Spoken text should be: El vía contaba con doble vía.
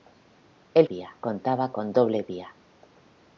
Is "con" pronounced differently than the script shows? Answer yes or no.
no